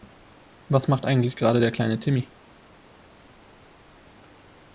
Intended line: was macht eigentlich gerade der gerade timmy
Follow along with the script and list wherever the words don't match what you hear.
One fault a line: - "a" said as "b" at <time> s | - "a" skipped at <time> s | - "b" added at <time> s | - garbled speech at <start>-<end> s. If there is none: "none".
- "gerade" said as "kleine" at 1.7 s